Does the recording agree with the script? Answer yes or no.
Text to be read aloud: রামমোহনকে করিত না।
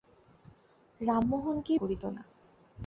yes